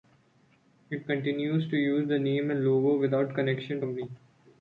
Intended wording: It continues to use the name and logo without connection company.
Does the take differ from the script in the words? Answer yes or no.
no